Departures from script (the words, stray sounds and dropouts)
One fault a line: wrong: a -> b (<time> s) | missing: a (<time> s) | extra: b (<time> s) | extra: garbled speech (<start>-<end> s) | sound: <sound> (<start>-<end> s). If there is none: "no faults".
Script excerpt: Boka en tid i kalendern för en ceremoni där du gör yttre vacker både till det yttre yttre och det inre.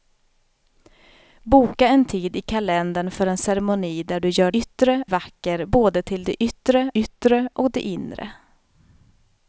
no faults